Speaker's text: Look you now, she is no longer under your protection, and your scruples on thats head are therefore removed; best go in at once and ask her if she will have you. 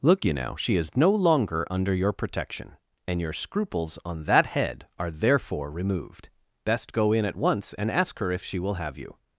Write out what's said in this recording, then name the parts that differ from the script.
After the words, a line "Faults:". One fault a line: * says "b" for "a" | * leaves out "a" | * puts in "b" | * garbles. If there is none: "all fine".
Look you now, she is no longer under your protection, and your scruples on that head are therefore removed; best go in at once and ask her if she will have you.
Faults:
* says "that" for "thats"